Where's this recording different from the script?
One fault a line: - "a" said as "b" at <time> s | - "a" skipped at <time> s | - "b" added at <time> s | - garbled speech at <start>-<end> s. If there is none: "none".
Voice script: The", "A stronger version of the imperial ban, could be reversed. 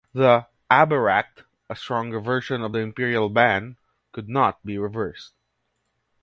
- "Aberacht" added at 0.7 s
- "not" added at 4.3 s